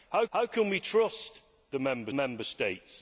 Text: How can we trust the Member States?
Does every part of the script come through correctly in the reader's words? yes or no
no